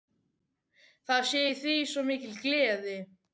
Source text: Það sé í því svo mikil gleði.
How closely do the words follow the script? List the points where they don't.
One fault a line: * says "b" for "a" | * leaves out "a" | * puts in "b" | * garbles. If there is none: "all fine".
all fine